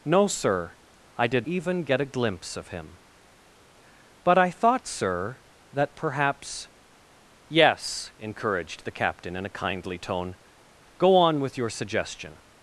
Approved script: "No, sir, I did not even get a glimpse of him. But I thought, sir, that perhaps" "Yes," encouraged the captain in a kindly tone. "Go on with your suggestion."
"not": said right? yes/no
no